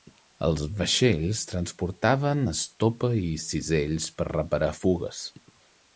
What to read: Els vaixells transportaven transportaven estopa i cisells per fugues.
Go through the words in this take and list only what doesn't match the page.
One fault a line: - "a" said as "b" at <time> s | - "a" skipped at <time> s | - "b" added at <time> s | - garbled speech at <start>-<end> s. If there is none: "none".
- "transportaven" skipped at 2.4 s
- "reparar" added at 4.3 s